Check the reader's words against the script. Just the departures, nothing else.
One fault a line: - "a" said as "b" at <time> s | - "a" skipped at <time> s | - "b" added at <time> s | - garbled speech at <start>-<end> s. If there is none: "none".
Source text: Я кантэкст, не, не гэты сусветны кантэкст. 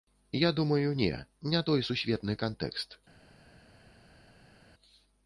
- "кантэкст" said as "думаю" at 0.6 s
- "гэты" said as "той" at 1.7 s